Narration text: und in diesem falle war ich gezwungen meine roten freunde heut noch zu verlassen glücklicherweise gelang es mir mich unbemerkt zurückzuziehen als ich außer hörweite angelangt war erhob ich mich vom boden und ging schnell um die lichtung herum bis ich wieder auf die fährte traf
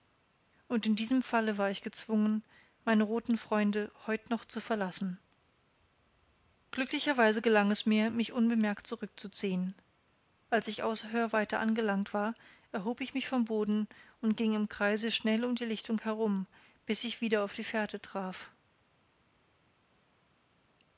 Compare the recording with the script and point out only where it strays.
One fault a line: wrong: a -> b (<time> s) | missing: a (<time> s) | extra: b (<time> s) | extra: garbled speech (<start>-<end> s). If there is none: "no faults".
extra: im kreise (14.6 s)